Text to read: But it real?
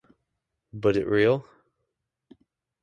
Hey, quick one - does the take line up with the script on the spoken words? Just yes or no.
yes